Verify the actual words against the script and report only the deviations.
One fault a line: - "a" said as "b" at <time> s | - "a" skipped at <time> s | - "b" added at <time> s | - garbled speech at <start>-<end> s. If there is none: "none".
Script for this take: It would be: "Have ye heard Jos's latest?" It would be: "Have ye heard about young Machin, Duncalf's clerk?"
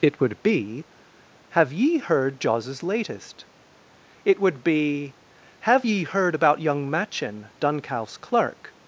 none